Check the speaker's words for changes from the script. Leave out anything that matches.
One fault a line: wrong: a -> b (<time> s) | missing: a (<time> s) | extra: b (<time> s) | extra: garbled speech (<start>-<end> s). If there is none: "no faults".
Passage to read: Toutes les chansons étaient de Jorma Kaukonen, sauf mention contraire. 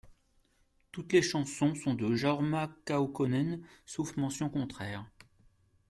wrong: étaient -> sont (1.8 s)